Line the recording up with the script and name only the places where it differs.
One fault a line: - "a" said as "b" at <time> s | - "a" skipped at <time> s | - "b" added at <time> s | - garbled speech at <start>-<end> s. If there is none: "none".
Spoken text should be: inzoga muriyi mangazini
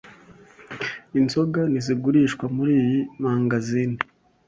- "ntizigurishwa" added at 1.7 s